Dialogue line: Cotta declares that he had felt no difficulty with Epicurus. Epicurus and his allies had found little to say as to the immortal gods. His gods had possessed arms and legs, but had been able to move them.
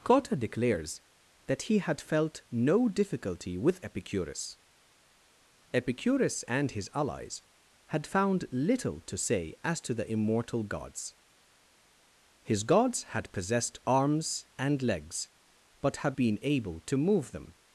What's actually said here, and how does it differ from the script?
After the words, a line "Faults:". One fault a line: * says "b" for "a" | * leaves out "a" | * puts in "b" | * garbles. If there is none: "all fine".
Cotta declares that he had felt no difficulty with Epicurus. Epicurus and his allies had found little to say as to the immortal gods. His gods had possessed arms and legs, but had been able to move them.
Faults:
all fine